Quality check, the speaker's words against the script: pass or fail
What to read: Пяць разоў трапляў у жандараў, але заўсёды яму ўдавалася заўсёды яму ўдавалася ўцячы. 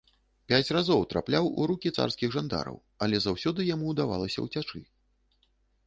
fail